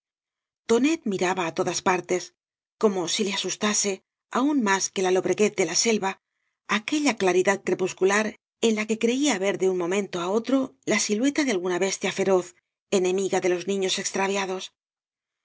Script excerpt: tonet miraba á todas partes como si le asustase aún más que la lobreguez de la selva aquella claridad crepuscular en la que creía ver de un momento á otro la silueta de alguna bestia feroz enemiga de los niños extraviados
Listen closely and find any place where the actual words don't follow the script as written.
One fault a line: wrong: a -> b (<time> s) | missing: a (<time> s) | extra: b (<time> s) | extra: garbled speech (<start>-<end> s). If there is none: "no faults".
no faults